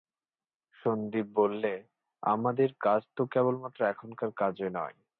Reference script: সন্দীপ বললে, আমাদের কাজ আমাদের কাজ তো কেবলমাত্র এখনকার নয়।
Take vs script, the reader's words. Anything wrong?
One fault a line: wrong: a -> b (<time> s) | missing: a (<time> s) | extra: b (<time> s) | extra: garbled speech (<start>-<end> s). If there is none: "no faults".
missing: আমাদের কাজ (3.0 s)
extra: কাজই (4.4 s)